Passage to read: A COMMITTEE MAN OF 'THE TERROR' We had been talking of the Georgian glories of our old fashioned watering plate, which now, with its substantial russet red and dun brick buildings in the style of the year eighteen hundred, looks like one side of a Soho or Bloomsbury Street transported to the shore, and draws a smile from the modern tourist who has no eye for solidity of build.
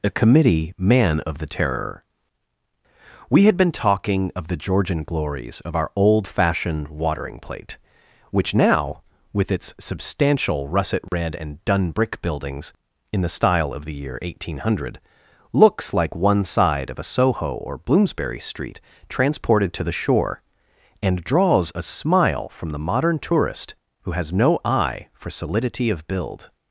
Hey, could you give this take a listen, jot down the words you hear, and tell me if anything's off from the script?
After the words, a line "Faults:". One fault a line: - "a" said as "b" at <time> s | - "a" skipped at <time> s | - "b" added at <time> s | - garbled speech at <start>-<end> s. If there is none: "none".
A COMMITTEE MAN OF 'THE TERROR' We had been talking of the Georgian glories of our old fashioned watering plate, which now, with its substantial russet red and dun brick buildings in the style of the year eighteen hundred, looks like one side of a Soho or Bloomsbury Street transported to the shore, and draws a smile from the modern tourist who has no eye for solidity of build.
Faults:
none